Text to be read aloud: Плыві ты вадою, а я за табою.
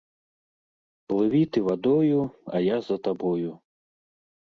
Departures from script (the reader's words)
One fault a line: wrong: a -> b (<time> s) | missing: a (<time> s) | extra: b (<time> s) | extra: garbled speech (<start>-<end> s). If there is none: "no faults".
no faults